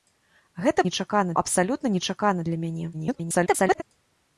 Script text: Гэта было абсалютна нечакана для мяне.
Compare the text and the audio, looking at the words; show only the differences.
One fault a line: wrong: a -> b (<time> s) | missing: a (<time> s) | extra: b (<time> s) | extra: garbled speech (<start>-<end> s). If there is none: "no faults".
wrong: было -> нечакана (0.9 s)
extra: garbled speech (2.9-3.8 s)